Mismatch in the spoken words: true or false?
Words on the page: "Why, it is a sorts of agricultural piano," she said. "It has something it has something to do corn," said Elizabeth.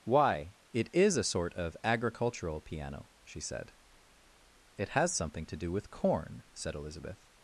true